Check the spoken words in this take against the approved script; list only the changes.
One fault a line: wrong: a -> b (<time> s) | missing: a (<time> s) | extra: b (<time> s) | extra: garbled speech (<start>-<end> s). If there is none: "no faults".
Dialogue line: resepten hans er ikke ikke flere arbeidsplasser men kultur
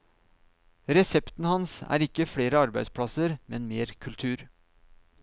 missing: ikke (2.2 s)
extra: mer (3.7 s)